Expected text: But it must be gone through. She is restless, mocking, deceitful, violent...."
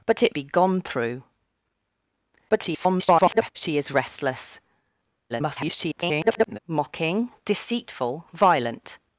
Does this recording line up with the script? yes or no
no